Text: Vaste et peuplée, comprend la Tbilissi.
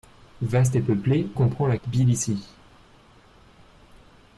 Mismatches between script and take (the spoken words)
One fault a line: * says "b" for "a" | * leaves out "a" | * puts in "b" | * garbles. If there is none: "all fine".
all fine